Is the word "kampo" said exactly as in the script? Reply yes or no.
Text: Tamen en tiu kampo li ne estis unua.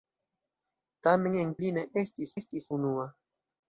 no